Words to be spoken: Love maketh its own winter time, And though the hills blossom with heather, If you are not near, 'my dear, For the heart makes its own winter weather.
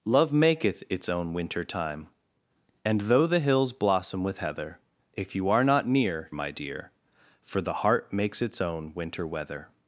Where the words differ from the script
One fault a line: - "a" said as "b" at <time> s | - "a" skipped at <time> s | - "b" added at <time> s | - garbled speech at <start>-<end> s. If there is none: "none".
none